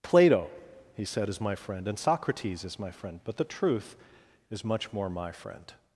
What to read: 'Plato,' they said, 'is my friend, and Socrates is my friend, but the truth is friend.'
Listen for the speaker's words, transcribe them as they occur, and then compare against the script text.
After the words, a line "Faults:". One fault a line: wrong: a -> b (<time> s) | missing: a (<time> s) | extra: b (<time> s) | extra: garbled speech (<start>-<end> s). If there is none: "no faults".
'Plato,' he said, 'is my friend, and Socrates is my friend, but the truth is much more my friend.'
Faults:
wrong: they -> he (0.9 s)
extra: much more my (4.6 s)